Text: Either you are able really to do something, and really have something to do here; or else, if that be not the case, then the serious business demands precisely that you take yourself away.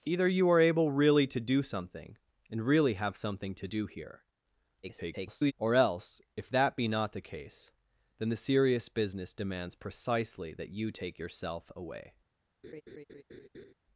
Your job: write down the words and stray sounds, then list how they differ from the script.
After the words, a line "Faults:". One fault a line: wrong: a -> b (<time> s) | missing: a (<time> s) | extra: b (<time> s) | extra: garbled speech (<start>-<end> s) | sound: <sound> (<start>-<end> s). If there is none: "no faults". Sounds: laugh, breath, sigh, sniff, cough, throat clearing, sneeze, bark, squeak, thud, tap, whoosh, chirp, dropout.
Either you are able really to do something, and really have something to do here; [garbled] or else, if that be not the case, then the serious business demands precisely that you take yourself away.
Faults:
extra: garbled speech (4.8-5.5 s)
sound: laugh (12.6-13.7 s)